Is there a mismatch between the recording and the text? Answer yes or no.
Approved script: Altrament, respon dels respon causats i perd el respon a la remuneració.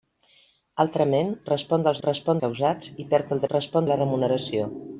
no